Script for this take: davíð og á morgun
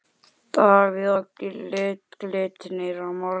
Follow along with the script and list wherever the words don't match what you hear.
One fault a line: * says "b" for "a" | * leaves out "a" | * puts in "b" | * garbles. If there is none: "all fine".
* puts in "glitnir"